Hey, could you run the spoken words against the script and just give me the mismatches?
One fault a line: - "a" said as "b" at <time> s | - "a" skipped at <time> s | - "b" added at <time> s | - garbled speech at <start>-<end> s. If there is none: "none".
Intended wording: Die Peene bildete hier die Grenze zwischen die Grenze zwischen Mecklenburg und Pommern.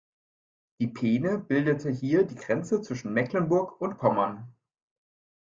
- "die Grenze zwischen" skipped at 3.1 s